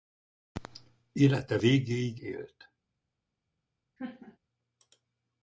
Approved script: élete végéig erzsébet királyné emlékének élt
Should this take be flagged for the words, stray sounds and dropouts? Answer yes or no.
yes